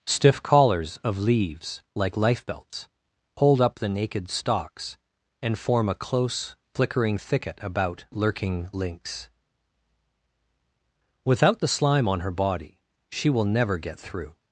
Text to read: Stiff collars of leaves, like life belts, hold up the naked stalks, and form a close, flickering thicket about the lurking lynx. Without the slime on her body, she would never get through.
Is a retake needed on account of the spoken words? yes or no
yes